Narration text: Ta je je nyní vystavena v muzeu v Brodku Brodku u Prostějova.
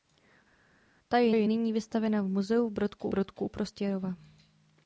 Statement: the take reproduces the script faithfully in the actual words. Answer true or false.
true